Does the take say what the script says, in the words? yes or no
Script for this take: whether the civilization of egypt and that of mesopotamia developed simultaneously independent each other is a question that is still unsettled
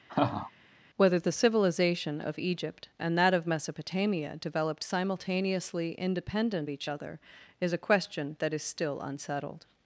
yes